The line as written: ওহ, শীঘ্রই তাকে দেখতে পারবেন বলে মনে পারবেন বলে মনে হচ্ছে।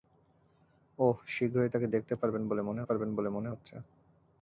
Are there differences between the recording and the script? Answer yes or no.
no